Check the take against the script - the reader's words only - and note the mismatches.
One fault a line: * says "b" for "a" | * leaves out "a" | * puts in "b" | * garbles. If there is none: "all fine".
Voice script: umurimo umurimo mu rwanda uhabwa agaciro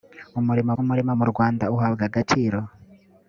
all fine